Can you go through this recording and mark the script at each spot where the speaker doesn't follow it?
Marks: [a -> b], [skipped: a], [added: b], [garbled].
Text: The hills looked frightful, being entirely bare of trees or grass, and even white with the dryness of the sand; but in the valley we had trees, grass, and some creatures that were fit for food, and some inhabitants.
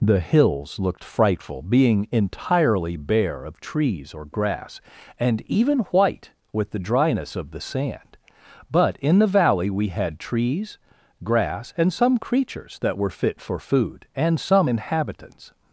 The hills looked frightful, being entirely bare of trees or grass, and even white with the dryness of the sand; but in the valley we had trees, grass, and some creatures that were fit for food, and some inhabitants.